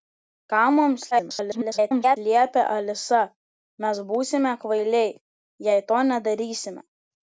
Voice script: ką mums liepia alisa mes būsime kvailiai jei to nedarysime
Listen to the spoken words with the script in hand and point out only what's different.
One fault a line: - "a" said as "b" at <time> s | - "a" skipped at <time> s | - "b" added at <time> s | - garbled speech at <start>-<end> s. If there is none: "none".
- garbled speech at 1.1-2.2 s